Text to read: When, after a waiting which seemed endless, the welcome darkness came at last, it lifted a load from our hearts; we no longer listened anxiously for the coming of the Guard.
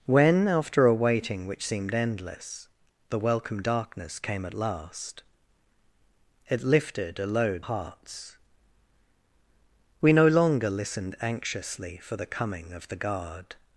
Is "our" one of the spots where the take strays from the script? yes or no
yes